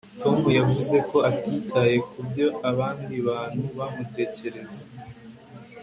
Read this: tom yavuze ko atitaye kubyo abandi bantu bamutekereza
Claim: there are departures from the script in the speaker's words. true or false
false